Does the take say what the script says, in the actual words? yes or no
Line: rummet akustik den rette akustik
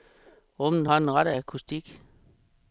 no